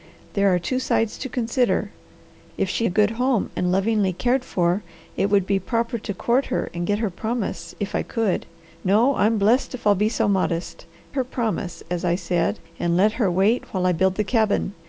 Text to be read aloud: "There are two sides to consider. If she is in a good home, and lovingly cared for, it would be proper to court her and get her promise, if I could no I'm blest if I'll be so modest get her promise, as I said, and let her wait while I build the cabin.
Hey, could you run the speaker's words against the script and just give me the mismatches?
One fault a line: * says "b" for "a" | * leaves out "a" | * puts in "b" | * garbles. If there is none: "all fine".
* leaves out "is in"
* leaves out "get"